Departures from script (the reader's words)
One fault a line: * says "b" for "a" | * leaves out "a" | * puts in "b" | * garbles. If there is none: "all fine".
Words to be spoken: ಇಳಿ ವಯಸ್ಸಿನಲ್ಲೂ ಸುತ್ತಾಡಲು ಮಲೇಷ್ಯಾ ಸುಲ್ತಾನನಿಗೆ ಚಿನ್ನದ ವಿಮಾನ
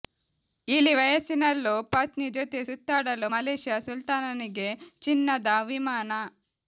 * puts in "ಪತ್ನಿ ಜೊತೆ"